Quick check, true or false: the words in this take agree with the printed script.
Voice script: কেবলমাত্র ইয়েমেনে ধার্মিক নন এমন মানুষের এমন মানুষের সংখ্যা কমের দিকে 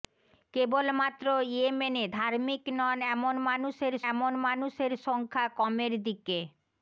true